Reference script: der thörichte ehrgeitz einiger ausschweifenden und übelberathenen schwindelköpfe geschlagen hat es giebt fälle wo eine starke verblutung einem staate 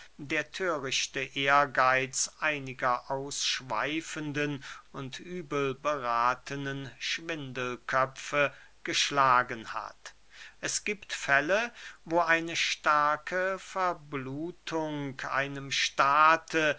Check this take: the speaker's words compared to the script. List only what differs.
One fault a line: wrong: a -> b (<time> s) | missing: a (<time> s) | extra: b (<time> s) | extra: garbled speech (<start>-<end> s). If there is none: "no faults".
no faults